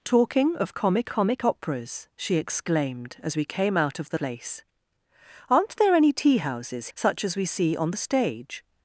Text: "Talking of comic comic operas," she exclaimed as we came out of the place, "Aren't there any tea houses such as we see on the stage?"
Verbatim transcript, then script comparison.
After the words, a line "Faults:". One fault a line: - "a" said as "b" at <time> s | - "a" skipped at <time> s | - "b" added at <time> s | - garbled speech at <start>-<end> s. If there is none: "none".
"Talking of comic comic operas," she exclaimed as we came out of the place, "Aren't there any tea houses such as we see on the stage?"
Faults:
none